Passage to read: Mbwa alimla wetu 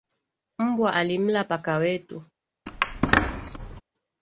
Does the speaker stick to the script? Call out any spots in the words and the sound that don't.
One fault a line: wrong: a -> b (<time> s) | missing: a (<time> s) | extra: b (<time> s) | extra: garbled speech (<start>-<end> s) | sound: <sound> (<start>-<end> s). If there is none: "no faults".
extra: paka (1.4 s)
sound: squeak (2.7-3.8 s)